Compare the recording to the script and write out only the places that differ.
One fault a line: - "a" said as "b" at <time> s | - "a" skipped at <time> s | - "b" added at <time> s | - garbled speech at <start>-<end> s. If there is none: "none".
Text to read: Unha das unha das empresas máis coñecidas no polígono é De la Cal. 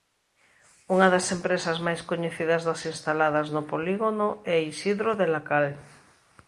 - "unha das" skipped at 1.3 s
- "das instaladas" added at 2.7 s
- "Isidro" added at 4.7 s